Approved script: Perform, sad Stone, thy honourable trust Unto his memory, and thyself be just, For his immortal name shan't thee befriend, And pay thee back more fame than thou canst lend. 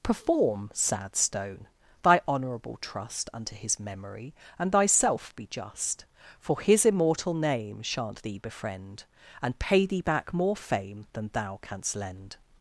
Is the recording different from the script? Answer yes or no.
no